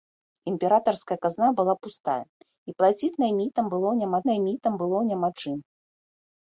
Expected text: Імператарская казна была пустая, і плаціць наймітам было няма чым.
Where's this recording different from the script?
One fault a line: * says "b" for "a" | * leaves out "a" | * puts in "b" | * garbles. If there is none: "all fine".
* puts in "наймітам было няма"